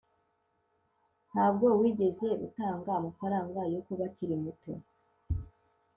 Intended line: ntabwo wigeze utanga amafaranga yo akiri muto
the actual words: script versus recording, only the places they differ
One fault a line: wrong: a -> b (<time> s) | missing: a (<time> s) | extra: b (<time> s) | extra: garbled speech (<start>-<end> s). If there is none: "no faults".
extra: kuba (3.9 s)